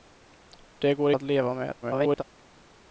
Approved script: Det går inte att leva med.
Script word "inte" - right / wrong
wrong